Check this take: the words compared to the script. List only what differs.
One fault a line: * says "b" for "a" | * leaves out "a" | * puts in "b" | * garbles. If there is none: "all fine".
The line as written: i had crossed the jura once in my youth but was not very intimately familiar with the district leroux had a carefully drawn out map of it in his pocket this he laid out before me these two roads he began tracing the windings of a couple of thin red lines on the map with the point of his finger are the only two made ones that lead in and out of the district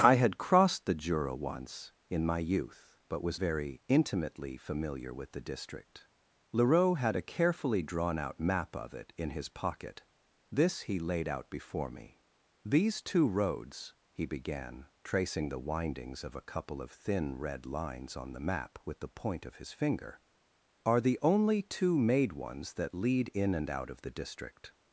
* leaves out "not"